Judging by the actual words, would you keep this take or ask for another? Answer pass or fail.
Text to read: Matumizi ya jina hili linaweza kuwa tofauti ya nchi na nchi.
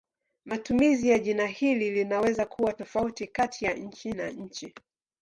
fail